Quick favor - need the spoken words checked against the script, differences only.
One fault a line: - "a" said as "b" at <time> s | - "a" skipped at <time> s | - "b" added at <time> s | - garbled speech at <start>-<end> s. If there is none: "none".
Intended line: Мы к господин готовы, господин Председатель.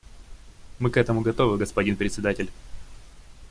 - "господин" said as "этому" at 1.0 s